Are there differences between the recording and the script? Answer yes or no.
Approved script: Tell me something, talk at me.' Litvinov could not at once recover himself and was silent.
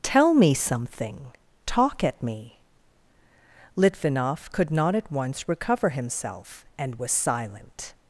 no